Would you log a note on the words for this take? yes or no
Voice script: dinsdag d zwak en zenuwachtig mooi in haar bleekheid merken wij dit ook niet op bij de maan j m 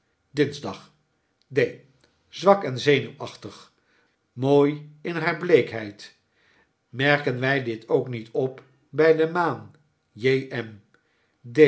no